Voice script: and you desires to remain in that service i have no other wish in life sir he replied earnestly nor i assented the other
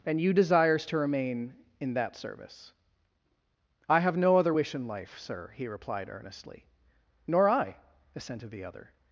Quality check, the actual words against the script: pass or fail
pass